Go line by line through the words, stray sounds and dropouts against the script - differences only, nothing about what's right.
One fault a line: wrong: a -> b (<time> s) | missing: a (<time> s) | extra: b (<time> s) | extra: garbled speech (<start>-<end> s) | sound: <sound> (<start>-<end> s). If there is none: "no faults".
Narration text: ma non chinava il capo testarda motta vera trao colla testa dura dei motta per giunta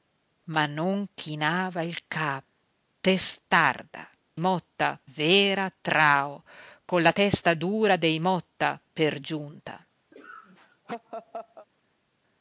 sound: laugh (10.1-11.7 s)